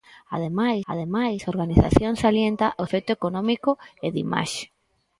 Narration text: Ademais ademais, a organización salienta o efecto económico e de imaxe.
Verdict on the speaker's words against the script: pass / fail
pass